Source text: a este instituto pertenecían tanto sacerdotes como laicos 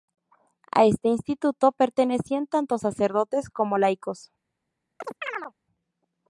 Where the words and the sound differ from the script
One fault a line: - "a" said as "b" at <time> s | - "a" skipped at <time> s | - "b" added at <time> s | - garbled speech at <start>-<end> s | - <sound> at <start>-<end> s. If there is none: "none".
- chirp at 5.0-5.5 s